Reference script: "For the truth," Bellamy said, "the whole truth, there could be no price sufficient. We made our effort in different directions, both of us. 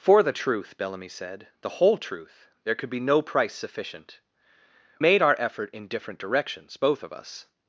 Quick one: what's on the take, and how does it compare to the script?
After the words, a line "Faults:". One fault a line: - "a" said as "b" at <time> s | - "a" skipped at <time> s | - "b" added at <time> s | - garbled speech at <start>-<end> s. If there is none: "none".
"For the truth," Bellamy said, "the whole truth, there could be no price sufficient. Made our effort in different directions, both of us.
Faults:
- "We" skipped at 4.2 s